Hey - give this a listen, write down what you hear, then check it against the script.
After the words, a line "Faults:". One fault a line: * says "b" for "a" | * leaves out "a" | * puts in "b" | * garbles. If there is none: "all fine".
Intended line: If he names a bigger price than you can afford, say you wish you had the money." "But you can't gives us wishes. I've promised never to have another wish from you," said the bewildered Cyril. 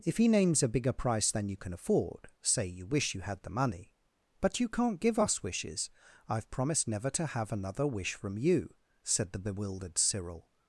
If he names a bigger price than you can afford, say you wish you had the money." "But you can't give us wishes. I've promised never to have another wish from you," said the bewildered Cyril.
Faults:
* says "give" for "gives"